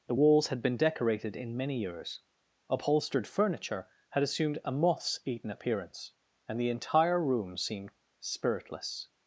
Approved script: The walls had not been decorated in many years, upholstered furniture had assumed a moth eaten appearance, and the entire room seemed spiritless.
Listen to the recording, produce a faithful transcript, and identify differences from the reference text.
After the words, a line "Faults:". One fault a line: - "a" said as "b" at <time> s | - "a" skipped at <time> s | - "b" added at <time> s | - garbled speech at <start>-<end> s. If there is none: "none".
The walls had been decorated in many years, upholstered furniture had assumed a moths eaten appearance, and the entire room seemed spiritless.
Faults:
- "not" skipped at 0.6 s
- "moth" said as "moths" at 4.7 s